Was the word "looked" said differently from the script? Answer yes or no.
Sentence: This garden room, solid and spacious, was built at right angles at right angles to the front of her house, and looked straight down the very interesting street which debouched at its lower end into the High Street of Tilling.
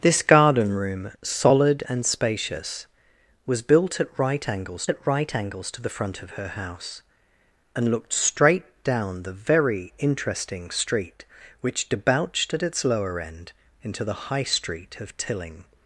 no